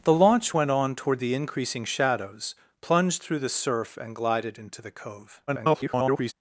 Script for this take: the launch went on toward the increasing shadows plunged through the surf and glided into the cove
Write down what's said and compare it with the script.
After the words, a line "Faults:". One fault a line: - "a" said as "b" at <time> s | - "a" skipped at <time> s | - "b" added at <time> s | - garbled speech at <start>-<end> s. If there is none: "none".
the launch went on toward the increasing shadows plunged through the surf and glided into the cove [garbled]
Faults:
- garbled speech at 5.5-6.3 s